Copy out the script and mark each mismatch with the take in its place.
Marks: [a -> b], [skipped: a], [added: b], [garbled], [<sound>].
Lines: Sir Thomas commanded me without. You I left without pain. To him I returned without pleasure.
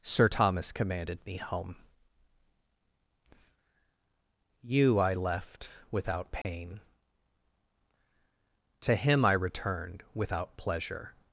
Sir Thomas commanded me [without. -> home] You I left without pain. [dropout] To him I returned without pleasure.